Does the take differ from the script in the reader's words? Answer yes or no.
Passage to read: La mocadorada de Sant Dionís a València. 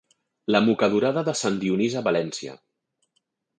no